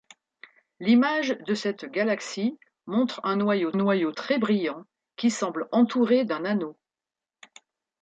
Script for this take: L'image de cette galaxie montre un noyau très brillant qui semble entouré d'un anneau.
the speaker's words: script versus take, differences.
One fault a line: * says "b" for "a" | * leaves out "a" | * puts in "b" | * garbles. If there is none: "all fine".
* puts in "noyau"